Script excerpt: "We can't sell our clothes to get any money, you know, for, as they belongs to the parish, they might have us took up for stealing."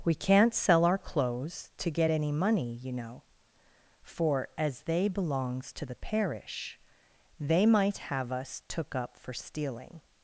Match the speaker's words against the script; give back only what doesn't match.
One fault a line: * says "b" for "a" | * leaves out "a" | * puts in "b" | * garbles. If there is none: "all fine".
all fine